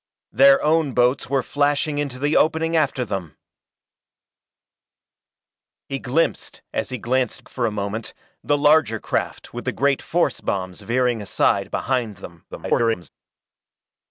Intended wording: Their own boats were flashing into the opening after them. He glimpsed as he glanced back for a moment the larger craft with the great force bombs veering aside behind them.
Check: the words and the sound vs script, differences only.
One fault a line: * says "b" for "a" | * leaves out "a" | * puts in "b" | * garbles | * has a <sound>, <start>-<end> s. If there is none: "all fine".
* leaves out "back"
* garbles